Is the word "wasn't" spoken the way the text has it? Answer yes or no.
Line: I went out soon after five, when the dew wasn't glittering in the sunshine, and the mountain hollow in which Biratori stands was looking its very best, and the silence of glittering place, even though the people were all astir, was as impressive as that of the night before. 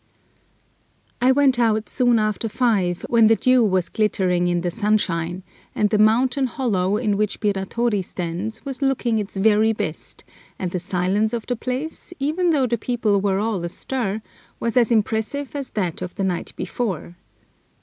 no